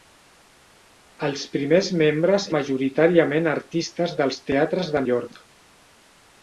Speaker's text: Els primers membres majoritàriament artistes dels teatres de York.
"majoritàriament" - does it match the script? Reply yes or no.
yes